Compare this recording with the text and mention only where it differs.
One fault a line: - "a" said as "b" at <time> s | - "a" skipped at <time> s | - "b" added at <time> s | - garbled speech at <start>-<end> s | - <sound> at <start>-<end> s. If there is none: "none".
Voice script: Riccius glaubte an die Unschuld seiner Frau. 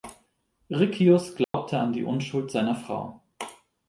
- dropout at 1.4-1.5 s